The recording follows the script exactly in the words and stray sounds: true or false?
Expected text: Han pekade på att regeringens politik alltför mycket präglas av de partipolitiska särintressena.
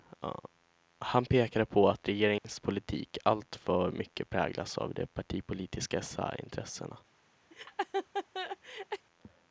false